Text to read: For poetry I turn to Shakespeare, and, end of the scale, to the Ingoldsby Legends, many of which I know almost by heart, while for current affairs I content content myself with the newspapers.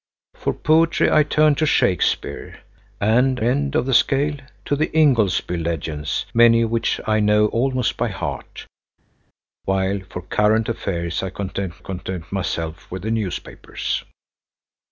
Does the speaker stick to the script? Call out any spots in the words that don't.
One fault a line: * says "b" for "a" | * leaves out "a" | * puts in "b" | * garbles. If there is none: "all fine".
all fine